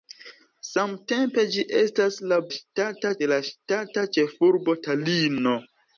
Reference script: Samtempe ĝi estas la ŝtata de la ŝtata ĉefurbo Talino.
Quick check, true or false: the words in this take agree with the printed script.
true